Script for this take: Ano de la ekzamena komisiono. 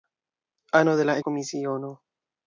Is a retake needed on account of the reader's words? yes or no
yes